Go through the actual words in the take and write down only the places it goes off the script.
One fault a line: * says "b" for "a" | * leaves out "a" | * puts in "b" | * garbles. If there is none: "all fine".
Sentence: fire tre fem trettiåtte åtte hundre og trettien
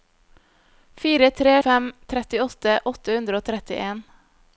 all fine